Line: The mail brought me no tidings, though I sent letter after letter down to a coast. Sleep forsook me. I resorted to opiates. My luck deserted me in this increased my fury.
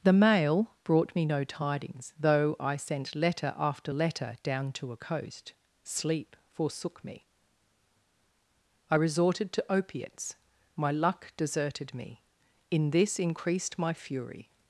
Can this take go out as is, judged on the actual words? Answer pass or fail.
pass